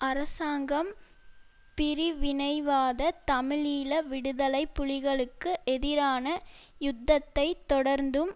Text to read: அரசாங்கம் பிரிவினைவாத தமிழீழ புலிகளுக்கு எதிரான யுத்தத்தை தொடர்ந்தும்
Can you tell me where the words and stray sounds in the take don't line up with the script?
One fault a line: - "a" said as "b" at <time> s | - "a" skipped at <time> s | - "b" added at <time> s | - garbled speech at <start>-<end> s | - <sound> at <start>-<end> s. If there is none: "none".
- "விடுதலை" added at 4.0 s